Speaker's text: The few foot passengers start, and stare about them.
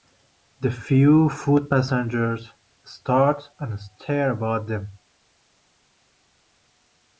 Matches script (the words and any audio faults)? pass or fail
pass